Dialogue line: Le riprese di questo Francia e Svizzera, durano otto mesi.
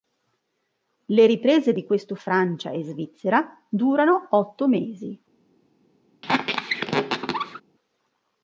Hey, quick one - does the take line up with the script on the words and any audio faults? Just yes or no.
no